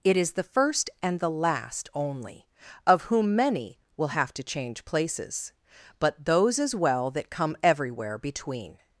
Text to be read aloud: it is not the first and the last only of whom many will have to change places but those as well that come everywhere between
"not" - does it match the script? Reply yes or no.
no